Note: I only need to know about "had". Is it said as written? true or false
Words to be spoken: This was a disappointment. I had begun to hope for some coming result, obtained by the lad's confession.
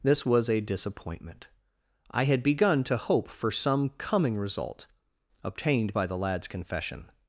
true